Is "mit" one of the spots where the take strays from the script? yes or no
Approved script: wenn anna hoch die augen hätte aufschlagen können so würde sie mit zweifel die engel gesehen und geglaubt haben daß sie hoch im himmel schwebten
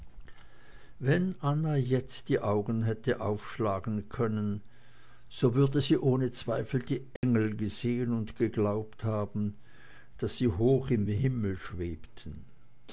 yes